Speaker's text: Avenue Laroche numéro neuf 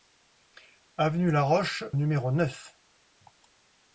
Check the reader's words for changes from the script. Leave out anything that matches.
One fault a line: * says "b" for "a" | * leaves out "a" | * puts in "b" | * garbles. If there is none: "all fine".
all fine